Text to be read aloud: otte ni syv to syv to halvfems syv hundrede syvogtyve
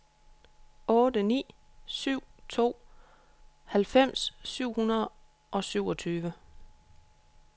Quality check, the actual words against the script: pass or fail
fail